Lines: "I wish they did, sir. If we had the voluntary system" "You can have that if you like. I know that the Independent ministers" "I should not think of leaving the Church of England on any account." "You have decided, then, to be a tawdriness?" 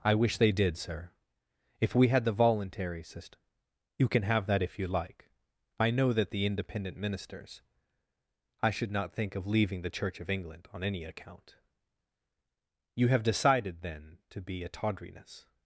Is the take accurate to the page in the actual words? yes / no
yes